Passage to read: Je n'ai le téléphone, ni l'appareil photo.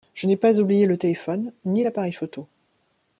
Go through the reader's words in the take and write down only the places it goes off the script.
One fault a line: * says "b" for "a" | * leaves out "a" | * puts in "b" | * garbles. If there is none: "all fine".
* puts in "pas oublié"